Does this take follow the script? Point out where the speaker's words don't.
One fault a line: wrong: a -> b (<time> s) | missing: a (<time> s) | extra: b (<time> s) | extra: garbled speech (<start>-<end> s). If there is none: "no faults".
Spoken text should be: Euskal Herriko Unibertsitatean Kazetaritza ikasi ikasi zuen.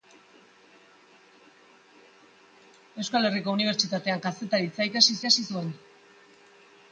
no faults